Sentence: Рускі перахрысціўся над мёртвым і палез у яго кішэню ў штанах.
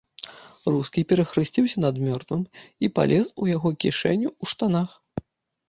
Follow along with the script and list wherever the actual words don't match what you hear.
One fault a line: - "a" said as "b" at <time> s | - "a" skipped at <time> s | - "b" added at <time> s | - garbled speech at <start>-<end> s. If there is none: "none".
none